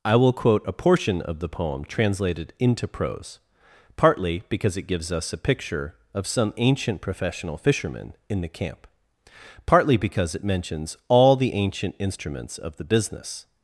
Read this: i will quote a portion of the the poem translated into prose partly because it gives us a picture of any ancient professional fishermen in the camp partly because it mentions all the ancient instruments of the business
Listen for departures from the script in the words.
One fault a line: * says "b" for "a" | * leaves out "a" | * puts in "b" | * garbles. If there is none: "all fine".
* leaves out "the"
* says "some" for "any"